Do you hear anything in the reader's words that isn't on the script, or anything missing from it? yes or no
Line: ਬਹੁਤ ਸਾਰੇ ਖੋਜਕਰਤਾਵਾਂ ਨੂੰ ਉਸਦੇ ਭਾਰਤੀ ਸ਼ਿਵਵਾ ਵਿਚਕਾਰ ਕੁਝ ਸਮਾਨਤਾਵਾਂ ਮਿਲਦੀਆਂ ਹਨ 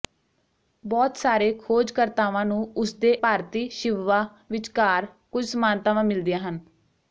no